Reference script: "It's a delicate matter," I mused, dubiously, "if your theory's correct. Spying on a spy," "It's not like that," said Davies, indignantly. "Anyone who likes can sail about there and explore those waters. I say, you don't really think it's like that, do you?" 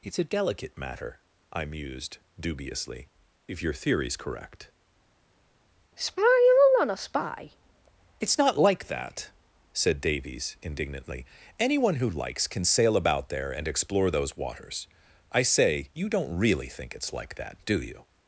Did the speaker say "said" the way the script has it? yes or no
yes